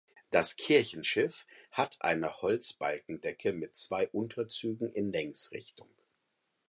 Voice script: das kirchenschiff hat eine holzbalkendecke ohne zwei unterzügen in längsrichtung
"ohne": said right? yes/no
no